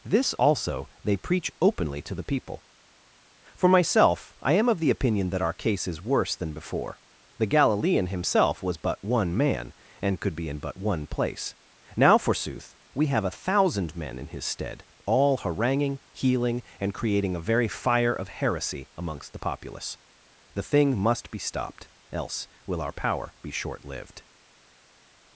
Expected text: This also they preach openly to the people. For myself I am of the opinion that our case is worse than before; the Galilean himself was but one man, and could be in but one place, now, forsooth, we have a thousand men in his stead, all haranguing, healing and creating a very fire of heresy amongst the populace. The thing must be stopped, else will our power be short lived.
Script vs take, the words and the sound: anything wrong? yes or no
no